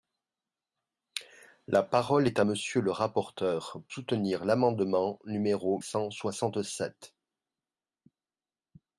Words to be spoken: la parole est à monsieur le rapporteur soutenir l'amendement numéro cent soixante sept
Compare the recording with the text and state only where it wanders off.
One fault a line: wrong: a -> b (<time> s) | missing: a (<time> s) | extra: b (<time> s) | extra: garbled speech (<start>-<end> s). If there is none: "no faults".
no faults